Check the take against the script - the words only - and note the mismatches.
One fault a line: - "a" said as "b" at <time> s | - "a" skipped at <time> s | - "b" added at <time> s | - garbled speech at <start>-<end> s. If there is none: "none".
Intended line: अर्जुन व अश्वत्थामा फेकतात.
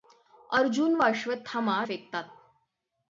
none